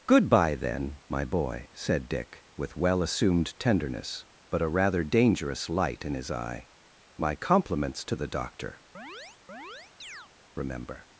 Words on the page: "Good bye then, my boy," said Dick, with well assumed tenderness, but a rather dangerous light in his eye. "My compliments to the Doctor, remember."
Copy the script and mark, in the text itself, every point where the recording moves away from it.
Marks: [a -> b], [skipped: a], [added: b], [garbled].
"Good bye then, my boy," said Dick, with well assumed tenderness, but a rather dangerous light in his eye. "My compliments to the Doctor, remember."